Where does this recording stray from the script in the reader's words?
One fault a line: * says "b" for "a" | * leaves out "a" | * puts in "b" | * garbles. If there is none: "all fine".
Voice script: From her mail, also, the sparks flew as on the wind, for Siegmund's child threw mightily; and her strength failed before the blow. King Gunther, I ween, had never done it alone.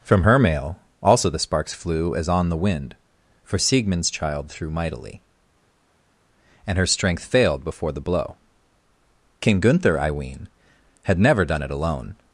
all fine